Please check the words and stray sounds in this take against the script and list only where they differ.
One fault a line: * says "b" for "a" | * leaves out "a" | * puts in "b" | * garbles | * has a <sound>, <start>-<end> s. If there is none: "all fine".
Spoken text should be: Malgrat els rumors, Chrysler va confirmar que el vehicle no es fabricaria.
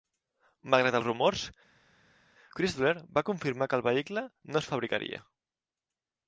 all fine